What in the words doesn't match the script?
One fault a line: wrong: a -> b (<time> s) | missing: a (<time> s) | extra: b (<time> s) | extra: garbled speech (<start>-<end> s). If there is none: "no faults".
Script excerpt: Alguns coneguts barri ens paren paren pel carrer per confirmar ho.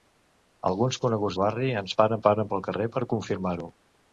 no faults